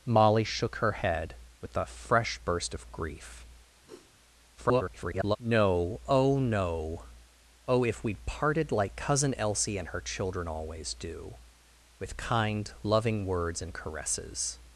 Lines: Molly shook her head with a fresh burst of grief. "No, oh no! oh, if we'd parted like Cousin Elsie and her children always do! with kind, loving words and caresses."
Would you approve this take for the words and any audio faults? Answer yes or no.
no